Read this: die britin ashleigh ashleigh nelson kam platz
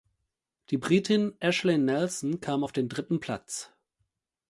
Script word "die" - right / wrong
right